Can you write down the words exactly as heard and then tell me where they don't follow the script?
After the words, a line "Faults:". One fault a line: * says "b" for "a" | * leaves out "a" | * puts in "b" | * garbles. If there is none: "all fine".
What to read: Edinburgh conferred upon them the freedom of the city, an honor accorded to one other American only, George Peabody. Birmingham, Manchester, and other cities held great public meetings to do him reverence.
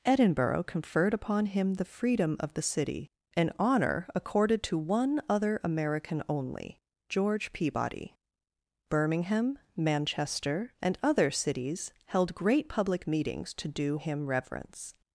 Edinburgh conferred upon him the freedom of the city, an honor accorded to one other American only, George Peabody. Birmingham, Manchester, and other cities held great public meetings to do him reverence.
Faults:
* says "him" for "them"